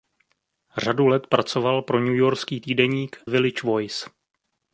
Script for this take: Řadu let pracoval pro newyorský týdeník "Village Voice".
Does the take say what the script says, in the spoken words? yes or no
yes